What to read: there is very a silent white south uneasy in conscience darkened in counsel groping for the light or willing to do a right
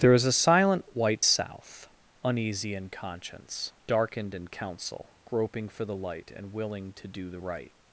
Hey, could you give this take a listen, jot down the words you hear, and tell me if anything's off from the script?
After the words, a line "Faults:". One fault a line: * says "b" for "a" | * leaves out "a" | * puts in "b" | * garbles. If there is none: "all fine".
there is a silent white south uneasy in conscience darkened in counsel groping for the light and willing to do the right
Faults:
* leaves out "very"
* says "and" for "or"
* says "the" for "a"